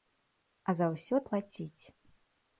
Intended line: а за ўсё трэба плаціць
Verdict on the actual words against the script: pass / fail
fail